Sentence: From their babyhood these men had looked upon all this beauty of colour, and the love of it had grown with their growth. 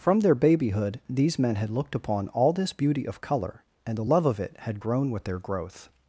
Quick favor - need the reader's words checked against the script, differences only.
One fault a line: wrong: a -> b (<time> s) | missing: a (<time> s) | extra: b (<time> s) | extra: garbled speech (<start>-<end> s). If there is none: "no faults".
no faults